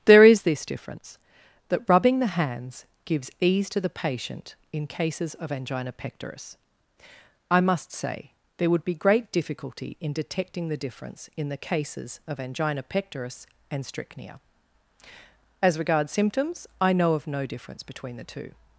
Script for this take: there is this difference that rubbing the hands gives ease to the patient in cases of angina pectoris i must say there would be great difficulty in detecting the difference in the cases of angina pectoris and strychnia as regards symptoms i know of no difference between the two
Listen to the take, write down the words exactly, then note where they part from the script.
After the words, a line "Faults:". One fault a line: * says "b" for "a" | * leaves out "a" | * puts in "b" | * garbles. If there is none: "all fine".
there is this difference that rubbing the hands gives ease to the patient in cases of angina pectoris i must say there would be great difficulty in detecting the difference in the cases of angina pectoris and strychnia as regards symptoms i know of no difference between the two
Faults:
all fine